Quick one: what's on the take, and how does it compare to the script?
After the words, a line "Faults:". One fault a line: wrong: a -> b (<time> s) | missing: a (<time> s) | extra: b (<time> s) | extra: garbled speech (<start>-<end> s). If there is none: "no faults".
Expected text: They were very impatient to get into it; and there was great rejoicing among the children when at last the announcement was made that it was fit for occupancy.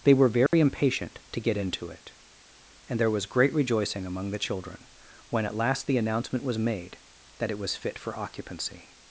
They were very impatient to get into it; and there was great rejoicing among the children when at last the announcement was made that it was fit for occupancy.
Faults:
no faults